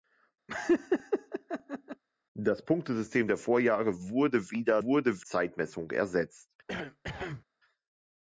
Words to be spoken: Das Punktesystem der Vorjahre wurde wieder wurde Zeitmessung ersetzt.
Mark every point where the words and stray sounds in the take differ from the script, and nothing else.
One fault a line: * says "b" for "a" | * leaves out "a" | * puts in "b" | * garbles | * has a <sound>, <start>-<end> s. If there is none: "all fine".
* has a laugh, 0.5-2.0 s
* has a cough, 6.7-7.4 s